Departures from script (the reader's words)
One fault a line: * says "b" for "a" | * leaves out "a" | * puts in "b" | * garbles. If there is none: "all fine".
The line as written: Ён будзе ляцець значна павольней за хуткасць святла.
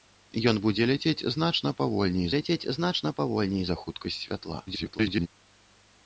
* puts in "ляцець значна павольней"
* garbles